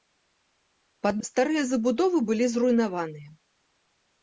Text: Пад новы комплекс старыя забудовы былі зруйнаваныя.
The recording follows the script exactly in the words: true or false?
false